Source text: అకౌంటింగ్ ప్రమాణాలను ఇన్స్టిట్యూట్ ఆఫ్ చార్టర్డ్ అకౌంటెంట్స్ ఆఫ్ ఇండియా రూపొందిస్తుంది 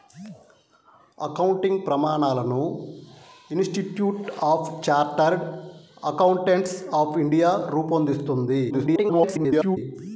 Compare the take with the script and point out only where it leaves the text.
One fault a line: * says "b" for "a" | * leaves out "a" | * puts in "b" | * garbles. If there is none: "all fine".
* garbles